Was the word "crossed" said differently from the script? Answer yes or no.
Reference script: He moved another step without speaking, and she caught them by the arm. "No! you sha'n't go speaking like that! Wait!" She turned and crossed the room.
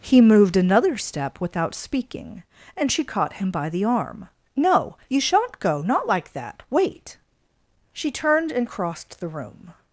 no